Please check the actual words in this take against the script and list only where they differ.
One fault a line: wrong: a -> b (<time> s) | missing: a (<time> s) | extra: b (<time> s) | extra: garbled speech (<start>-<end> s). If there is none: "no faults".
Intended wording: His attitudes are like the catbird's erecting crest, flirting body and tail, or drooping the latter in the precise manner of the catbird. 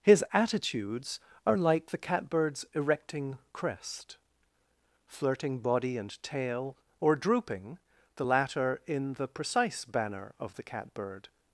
wrong: manner -> banner (9.8 s)